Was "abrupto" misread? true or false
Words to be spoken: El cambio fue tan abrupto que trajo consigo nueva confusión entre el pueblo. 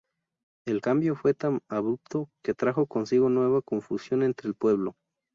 false